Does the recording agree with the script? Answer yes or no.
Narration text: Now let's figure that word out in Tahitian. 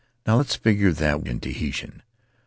no